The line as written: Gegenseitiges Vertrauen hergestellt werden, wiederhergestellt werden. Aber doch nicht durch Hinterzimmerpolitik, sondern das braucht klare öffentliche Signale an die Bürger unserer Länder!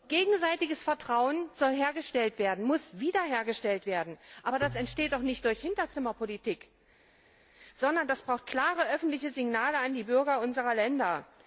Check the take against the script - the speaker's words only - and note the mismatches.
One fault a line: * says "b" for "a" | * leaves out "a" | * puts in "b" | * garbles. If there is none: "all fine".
* puts in "soll"
* puts in "muss"
* puts in "das entsteht"